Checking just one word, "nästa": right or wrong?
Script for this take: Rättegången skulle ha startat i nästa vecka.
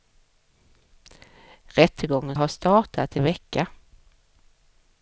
wrong